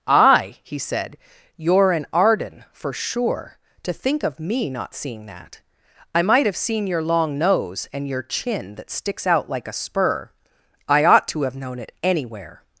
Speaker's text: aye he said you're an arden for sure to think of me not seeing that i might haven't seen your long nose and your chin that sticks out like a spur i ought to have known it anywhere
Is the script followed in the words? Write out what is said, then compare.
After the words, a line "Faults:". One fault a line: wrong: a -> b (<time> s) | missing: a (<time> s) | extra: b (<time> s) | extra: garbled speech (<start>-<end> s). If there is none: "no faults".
aye he said you're an arden for sure to think of me not seeing that i might have seen your long nose and your chin that sticks out like a spur i ought to have known it anywhere
Faults:
wrong: haven't -> have (6.5 s)